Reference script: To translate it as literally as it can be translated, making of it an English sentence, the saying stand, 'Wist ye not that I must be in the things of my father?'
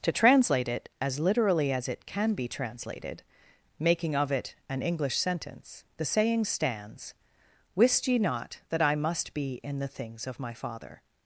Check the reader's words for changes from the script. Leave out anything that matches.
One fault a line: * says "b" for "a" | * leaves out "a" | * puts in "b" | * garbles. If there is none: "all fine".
* says "stands" for "stand"